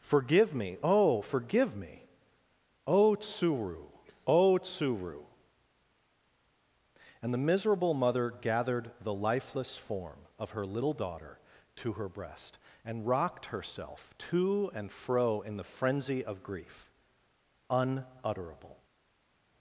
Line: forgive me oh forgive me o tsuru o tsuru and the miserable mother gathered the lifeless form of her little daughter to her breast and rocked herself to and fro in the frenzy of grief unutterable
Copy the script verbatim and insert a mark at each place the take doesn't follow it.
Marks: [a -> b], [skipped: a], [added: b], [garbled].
forgive me oh forgive me o tsuru o tsuru and the miserable mother gathered the lifeless form of her little daughter to her breast and rocked herself to and fro in the frenzy of grief unutterable